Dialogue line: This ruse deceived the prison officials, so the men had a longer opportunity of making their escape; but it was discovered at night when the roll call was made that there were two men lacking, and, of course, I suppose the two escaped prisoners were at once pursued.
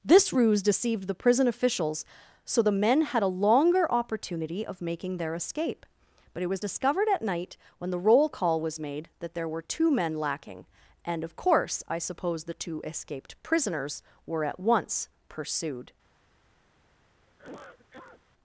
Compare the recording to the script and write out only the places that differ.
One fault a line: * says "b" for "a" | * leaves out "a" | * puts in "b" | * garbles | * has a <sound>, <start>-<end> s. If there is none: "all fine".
* has a cough, 17.3-18.2 s